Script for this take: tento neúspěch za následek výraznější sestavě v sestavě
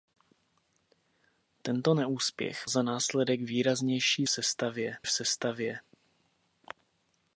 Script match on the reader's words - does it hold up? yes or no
yes